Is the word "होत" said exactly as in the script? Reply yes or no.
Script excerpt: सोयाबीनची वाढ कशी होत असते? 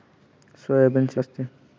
no